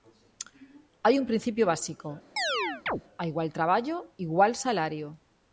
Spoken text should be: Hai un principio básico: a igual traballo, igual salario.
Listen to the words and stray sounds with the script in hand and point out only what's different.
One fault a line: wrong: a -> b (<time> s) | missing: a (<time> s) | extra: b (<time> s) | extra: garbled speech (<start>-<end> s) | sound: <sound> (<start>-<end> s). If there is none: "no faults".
sound: chirp (2.4-3.0 s)